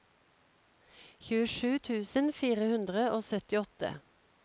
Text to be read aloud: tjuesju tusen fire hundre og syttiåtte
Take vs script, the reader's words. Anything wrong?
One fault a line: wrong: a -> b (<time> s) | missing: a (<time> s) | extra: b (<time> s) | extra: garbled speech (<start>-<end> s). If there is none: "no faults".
no faults